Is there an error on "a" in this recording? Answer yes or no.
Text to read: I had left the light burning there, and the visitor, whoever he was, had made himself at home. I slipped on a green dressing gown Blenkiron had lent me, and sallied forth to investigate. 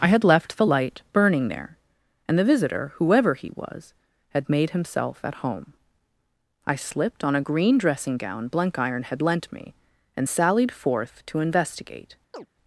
no